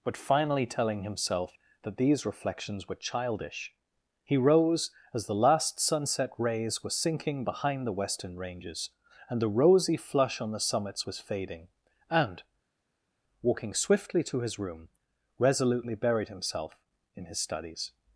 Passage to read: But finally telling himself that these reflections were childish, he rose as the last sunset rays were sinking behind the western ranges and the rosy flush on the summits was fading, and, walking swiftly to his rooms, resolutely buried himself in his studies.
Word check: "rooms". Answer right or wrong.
wrong